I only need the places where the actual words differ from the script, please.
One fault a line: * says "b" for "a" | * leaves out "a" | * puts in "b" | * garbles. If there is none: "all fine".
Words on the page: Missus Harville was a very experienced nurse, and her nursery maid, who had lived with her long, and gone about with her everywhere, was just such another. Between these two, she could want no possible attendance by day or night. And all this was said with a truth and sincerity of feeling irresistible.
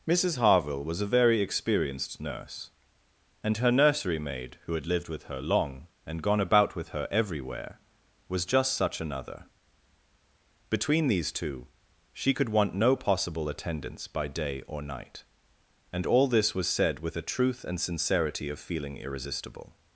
all fine